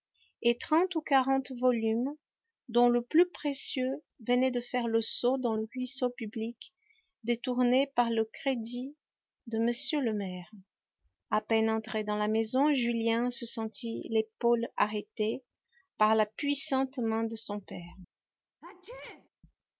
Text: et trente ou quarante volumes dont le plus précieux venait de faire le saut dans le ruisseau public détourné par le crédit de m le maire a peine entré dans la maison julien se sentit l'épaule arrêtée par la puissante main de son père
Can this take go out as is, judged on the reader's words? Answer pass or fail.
pass